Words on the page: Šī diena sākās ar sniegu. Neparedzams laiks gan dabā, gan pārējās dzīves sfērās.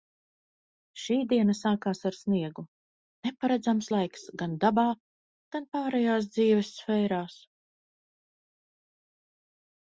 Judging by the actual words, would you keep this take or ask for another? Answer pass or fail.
pass